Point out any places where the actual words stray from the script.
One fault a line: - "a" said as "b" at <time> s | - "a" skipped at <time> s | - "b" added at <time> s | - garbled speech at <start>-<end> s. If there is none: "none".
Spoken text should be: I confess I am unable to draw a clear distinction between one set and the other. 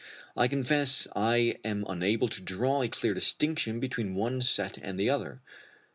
none